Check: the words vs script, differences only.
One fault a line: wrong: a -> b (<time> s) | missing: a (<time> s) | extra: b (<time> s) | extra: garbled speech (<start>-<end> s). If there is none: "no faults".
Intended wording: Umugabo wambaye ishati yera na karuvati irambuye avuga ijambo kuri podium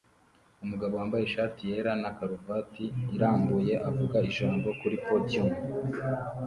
no faults